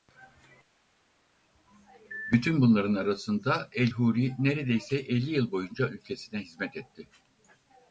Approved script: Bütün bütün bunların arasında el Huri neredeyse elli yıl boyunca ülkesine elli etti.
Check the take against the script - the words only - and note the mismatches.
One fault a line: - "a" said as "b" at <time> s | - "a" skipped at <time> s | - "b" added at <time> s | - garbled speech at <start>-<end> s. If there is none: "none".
- "bütün" skipped at 2.6 s
- "elli" said as "hizmet" at 6.4 s